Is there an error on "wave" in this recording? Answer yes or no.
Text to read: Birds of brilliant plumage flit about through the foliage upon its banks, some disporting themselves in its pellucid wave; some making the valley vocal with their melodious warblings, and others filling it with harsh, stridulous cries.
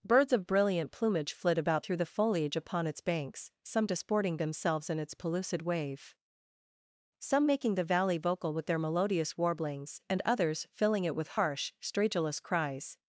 no